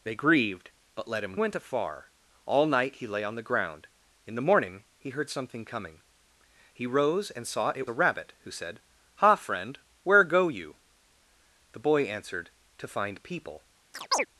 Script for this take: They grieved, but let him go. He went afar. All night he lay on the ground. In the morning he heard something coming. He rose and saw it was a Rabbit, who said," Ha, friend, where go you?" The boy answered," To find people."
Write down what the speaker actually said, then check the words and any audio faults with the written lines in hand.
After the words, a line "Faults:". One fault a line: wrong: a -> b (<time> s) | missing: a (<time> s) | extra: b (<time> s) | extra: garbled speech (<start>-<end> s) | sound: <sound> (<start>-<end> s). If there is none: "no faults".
They grieved, but let him went afar. All night he lay on the ground. In the morning he heard something coming. He rose and saw it a Rabbit, who said," Ha, friend, where go you?" The boy answered," To find people."
Faults:
missing: go He (1.4 s)
missing: was (7.9 s)
sound: chirp (13.9-14.3 s)